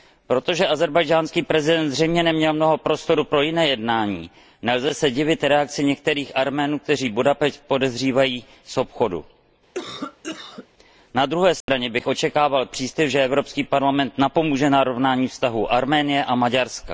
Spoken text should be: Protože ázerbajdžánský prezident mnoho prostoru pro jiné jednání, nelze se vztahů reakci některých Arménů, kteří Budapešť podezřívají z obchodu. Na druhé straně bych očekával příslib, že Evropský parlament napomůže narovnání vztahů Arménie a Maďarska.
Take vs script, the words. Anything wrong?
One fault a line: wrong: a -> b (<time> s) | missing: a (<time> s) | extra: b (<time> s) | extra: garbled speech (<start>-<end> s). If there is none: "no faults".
extra: zřejmě neměl (1.9 s)
wrong: vztahů -> divit (5.1 s)